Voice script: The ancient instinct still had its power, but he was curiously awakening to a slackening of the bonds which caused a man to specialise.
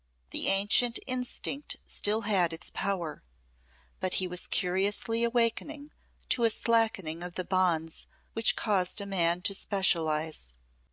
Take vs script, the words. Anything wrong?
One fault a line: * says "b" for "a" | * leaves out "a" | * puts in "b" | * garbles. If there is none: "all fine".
all fine